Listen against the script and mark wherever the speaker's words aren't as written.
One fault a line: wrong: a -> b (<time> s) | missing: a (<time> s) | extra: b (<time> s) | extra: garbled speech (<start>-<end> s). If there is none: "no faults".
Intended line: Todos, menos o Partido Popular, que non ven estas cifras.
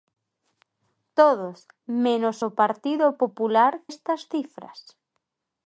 missing: que non ven (3.7 s)